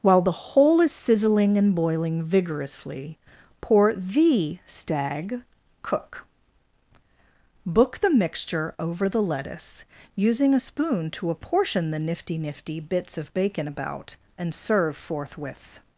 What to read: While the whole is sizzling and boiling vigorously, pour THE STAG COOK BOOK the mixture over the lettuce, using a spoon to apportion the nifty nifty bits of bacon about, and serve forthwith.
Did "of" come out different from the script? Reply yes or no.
no